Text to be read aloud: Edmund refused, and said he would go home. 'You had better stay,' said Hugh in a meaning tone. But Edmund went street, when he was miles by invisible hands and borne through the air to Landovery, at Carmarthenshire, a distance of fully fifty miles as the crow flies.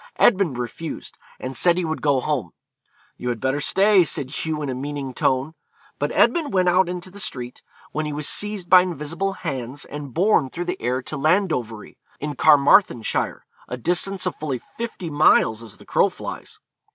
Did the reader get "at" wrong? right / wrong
wrong